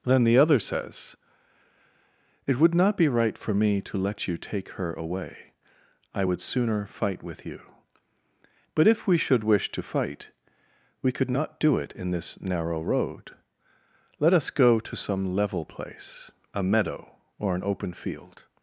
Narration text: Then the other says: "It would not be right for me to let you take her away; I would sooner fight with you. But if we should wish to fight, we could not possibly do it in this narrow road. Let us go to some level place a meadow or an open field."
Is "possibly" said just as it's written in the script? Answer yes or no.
no